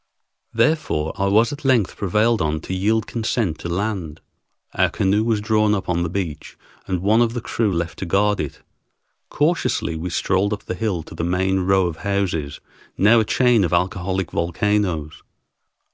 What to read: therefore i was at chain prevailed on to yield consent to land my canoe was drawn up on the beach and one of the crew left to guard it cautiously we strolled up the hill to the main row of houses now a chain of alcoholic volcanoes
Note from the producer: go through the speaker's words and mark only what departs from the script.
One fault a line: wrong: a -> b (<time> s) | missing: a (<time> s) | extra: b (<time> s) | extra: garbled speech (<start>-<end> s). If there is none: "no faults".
wrong: chain -> length (1.6 s)
wrong: my -> our (4.7 s)